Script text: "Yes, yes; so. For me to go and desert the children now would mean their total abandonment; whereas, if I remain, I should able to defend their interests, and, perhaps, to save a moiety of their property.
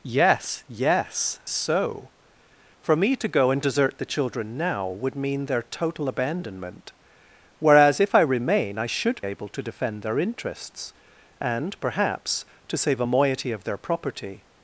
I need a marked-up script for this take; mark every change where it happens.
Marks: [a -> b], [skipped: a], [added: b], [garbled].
"Yes, yes; so. For me to go and desert the children now would mean their total abandonment; whereas, if I remain, I should able to defend their interests, and, perhaps, to save a moiety of their property.